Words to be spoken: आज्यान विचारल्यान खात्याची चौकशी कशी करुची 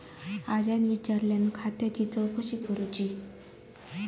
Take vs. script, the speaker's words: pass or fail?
fail